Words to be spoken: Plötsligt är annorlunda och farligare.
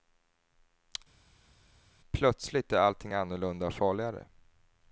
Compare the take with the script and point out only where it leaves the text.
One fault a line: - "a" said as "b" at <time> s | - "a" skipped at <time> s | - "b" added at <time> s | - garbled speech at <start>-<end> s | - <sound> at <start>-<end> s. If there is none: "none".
- "allting" added at 2.8 s